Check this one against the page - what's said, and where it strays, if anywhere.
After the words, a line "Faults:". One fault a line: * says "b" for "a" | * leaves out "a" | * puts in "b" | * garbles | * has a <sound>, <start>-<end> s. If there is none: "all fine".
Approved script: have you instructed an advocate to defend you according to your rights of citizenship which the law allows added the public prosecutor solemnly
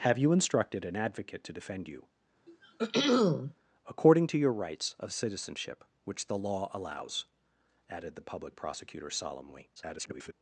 have you instructed an advocate to defend you according to your rights of citizenship which the law allows added the public prosecutor solemnly [garbled]
Faults:
* has a throat clearing, 2.5-3.5 s
* garbles